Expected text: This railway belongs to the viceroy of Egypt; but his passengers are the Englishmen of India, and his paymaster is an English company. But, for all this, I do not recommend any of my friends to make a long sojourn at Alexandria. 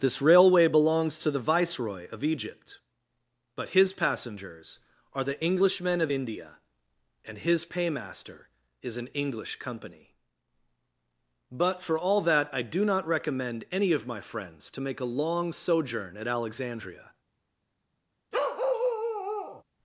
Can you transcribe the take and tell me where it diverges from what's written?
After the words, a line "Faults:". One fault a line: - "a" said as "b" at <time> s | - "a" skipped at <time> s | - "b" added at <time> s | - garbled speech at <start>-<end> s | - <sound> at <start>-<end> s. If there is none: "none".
This railway belongs to the viceroy of Egypt; but his passengers are the Englishmen of India, and his paymaster is an English company. But, for all that, I do not recommend any of my friends to make a long sojourn at Alexandria.
Faults:
- "this" said as "that" at 12.2 s
- bark at 18.3-19.6 s